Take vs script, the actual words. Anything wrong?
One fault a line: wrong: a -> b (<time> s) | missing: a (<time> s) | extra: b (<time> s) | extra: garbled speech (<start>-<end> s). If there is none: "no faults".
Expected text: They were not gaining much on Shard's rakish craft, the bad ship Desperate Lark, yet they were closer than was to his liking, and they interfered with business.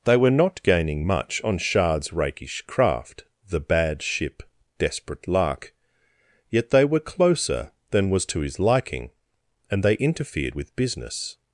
no faults